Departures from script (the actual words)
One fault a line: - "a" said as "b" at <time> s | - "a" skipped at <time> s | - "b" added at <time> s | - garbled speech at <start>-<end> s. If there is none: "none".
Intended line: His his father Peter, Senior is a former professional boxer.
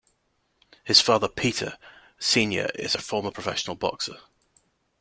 - "his" skipped at 1.0 s